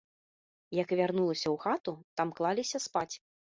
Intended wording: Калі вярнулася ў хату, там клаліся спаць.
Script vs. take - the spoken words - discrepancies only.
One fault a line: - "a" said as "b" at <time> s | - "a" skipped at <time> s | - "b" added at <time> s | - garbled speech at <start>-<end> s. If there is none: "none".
- "Калі" said as "Як" at 0.8 s